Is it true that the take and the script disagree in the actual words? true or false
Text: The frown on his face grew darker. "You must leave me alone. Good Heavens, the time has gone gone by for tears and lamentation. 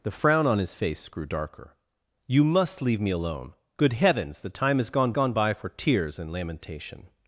false